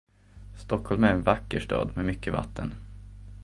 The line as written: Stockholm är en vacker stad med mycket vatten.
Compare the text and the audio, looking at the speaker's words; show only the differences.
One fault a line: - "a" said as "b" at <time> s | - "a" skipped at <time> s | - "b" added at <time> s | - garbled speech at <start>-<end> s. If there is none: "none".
none